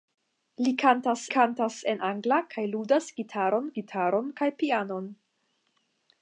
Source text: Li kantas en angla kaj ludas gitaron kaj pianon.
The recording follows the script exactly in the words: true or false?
false